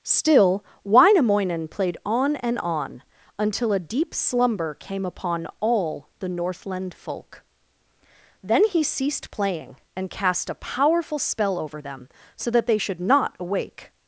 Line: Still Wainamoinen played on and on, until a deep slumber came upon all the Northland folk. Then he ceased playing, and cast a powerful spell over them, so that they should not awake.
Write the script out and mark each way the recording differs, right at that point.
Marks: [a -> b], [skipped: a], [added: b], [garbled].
Still Wainamoinen played on and on, until a deep slumber came upon all the Northland folk. Then he ceased playing, and cast a powerful spell over them, so that they should not awake.